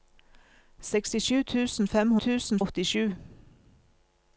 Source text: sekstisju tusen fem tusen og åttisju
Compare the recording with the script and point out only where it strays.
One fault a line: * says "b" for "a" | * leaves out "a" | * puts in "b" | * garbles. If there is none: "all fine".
all fine